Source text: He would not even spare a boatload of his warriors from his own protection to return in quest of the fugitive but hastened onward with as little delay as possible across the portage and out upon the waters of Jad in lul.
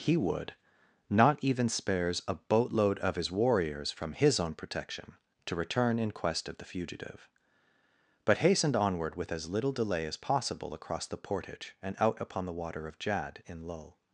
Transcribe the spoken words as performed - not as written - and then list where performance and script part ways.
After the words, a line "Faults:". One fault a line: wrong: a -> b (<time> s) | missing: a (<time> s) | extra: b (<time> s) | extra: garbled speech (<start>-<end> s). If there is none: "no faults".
He would not even spares a boatload of his warriors from his own protection to return in quest of the fugitive but hastened onward with as little delay as possible across the portage and out upon the water of Jad in lul.
Faults:
wrong: spare -> spares (1.7 s)
wrong: waters -> water (12.5 s)